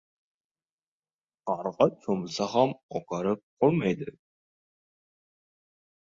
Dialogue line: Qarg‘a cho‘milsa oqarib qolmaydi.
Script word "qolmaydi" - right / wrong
right